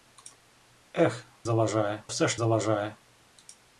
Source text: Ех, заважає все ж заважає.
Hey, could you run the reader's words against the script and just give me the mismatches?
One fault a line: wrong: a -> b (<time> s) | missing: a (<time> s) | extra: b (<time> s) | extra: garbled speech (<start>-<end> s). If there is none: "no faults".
no faults